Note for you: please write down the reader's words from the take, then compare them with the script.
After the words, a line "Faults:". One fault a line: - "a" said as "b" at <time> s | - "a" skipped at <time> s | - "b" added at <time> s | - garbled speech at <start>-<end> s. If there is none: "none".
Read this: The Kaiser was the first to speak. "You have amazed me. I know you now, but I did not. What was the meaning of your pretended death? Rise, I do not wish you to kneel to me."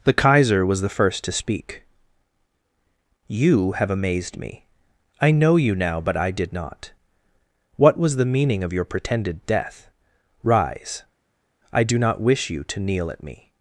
The Kaiser was the first to speak. "You have amazed me. I know you now, but I did not. What was the meaning of your pretended death? Rise, I do not wish you to kneel at me."
Faults:
- "to" said as "at" at 13.1 s